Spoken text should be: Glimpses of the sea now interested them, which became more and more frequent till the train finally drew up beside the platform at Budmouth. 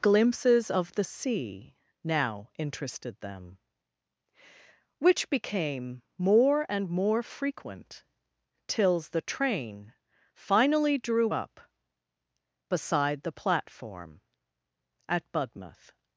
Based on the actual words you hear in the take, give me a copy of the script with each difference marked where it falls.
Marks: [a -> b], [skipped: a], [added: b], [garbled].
Glimpses of the sea now interested them, which became more and more frequent [till -> tills] the train finally drew up beside the platform at Budmouth.